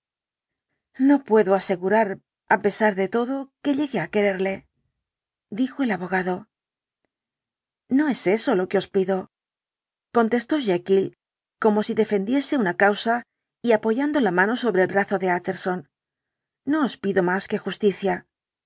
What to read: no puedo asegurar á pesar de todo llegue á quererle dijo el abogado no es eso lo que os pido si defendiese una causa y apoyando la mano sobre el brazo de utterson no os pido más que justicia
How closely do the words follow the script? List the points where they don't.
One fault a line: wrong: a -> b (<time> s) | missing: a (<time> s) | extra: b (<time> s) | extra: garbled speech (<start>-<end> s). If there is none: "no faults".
extra: que (3.6 s)
extra: contestó jekyll como (10.2 s)